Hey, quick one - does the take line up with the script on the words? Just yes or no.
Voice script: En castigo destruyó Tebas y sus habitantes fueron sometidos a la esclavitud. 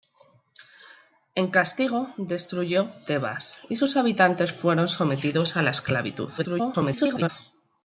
no